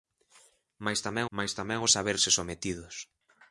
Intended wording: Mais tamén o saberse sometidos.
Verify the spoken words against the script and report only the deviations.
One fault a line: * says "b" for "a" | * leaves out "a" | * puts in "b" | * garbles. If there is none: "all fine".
* puts in "mais tamén"